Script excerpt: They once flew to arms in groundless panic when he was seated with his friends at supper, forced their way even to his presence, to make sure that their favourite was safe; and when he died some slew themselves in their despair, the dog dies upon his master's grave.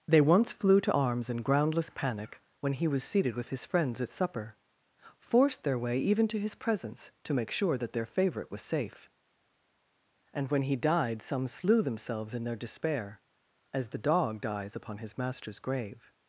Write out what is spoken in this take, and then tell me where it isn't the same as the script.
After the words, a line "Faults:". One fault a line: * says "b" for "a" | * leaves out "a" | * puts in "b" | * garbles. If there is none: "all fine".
They once flew to arms in groundless panic when he was seated with his friends at supper, forced their way even to his presence, to make sure that their favourite was safe; and when he died some slew themselves in their despair, as the dog dies upon his master's grave.
Faults:
* puts in "as"